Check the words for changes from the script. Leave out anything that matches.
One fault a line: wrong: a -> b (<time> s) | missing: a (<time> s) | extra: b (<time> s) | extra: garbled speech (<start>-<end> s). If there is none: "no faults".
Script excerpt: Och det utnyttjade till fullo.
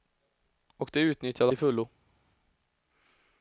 no faults